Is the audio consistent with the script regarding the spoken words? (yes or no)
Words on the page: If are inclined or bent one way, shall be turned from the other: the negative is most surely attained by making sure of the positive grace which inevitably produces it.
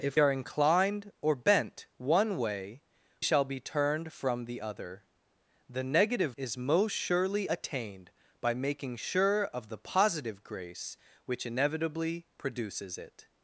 yes